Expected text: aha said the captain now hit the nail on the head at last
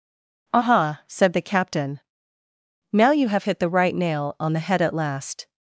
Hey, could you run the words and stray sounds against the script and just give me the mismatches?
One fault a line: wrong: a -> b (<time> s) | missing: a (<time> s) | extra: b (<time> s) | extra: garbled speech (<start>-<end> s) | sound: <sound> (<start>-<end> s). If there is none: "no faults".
extra: you have (3.1 s)
extra: right (3.7 s)